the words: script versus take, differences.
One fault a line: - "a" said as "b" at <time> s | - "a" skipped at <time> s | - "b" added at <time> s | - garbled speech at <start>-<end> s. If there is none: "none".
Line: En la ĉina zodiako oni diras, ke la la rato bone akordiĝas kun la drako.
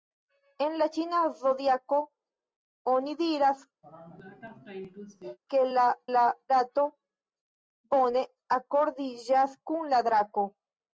none